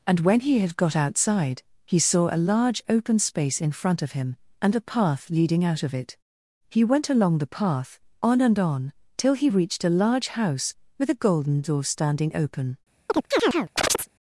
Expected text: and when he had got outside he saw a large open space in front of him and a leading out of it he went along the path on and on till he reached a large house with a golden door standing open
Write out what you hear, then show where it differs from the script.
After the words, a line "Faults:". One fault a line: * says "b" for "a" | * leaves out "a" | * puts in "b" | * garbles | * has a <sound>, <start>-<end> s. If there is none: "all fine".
and when he had got outside he saw a large open space in front of him and a path leading out of it he went along the path on and on till he reached a large house with a golden door standing open
Faults:
* puts in "path"
* has a chirp, 13.1-14.1 s